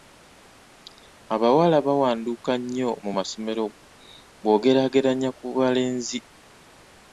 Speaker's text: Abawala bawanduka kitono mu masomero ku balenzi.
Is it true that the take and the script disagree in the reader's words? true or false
true